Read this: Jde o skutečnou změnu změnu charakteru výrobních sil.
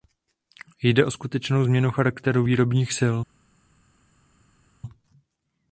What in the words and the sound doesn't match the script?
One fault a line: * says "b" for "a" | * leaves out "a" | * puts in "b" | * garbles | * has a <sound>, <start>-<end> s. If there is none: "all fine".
* leaves out "změnu"